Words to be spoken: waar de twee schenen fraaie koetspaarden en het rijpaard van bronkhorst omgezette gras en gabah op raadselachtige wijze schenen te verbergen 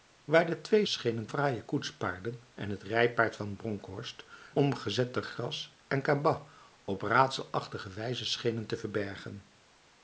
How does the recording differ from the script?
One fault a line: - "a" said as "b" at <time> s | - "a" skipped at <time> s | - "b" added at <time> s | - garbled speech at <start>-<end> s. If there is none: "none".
none